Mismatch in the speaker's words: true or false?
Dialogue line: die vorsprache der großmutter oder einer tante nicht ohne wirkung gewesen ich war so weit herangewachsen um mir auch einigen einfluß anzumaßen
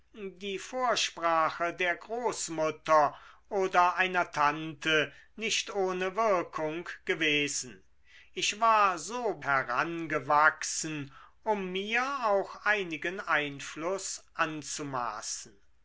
true